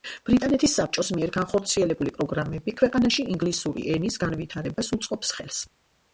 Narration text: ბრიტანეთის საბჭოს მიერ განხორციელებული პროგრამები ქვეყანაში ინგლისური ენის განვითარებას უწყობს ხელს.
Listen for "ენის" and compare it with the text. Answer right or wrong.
right